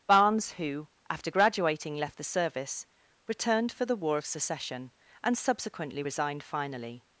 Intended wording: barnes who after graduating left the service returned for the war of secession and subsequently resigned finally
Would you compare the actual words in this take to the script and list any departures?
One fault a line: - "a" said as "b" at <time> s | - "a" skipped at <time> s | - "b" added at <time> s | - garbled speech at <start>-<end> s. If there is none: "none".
none